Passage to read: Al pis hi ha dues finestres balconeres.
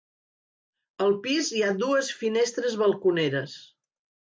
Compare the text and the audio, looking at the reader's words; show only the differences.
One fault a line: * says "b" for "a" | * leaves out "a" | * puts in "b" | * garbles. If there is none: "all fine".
all fine